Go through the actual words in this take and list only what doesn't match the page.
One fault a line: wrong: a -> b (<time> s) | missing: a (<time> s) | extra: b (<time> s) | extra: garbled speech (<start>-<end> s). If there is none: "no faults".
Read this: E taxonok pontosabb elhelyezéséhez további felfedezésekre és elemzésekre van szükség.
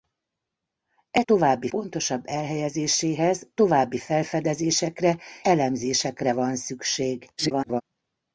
wrong: taxonok -> további (1.3 s)
missing: és (5.2 s)
extra: garbled speech (7.4-7.8 s)